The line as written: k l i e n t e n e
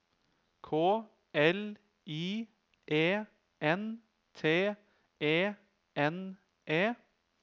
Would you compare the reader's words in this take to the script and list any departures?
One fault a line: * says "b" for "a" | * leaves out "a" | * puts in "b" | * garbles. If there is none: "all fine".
all fine